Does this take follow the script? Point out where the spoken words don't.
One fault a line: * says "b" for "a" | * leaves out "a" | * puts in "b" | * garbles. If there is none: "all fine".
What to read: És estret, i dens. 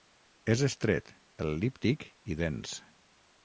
* puts in "el·líptic"